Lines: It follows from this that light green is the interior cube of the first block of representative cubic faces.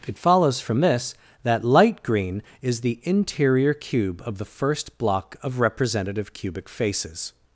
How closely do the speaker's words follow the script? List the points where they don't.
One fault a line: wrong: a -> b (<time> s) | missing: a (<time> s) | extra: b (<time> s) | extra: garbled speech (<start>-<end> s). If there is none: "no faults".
no faults